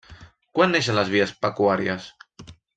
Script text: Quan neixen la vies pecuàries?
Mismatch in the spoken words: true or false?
true